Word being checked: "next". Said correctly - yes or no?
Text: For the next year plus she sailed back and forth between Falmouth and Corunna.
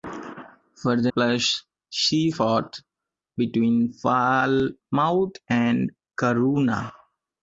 no